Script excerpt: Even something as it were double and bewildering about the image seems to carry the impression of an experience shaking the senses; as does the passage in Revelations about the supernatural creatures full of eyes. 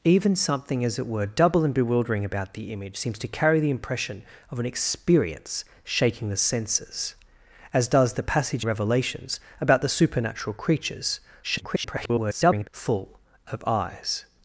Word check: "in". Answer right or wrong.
wrong